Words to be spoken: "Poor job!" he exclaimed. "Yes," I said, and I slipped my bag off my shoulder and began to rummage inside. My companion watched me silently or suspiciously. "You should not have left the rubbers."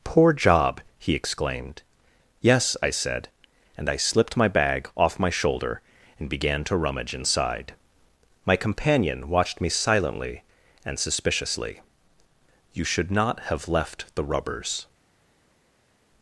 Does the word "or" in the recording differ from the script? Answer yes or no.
yes